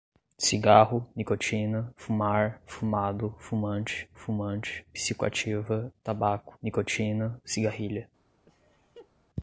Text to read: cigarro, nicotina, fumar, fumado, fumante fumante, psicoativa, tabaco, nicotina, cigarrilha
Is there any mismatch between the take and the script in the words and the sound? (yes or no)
yes